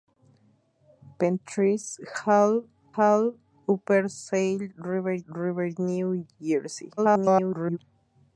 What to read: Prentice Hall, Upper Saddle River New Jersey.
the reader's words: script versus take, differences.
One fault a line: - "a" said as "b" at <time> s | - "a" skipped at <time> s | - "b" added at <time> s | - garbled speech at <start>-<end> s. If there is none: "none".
- "Hall" added at 3.0 s
- "River" added at 5.3 s
- garbled speech at 7.0-7.8 s